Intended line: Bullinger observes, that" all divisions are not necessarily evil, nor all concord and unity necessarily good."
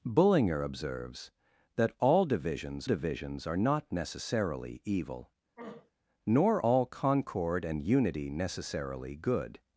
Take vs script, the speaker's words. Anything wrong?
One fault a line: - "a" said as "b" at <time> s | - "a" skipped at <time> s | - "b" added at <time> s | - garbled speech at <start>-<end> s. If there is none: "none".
- "divisions" added at 2.8 s